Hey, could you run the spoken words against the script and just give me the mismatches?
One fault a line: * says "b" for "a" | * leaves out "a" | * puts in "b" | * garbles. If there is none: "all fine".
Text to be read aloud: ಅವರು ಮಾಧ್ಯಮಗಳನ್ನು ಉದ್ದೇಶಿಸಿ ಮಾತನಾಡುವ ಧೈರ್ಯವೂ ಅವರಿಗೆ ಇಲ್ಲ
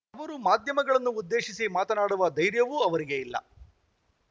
all fine